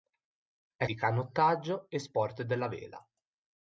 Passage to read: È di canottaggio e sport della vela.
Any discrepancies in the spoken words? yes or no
no